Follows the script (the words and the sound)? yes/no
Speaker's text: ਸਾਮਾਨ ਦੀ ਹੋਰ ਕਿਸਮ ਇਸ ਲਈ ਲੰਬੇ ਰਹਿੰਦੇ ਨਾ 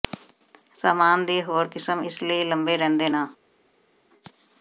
yes